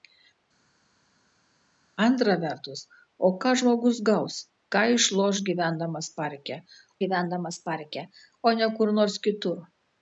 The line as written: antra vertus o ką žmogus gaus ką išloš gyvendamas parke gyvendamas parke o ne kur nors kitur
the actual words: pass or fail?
pass